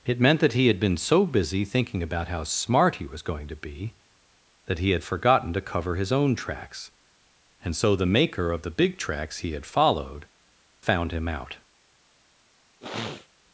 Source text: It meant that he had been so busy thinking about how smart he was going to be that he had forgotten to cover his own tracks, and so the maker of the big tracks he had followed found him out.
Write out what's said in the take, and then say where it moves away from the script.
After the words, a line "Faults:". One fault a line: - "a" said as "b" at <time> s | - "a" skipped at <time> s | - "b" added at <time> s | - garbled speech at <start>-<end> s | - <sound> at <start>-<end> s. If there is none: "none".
It meant that he had been so busy thinking about how smart he was going to be that he had forgotten to cover his own tracks, and so the maker of the big tracks he had followed found him out.
Faults:
- sniff at 12.8-13.3 s